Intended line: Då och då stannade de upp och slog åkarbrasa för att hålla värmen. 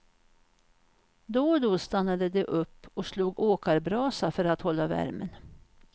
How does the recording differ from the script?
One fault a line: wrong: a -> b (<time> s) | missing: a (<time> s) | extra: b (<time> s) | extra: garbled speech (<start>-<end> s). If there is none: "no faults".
no faults